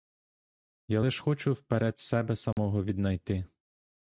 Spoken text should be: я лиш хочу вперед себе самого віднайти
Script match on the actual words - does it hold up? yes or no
yes